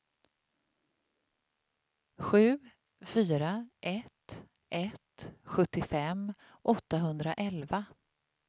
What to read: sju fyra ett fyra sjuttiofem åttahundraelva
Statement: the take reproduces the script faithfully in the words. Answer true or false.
false